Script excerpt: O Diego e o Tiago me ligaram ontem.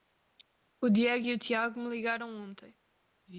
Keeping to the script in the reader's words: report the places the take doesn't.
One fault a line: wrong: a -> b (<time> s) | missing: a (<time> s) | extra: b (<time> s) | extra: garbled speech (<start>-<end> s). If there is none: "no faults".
no faults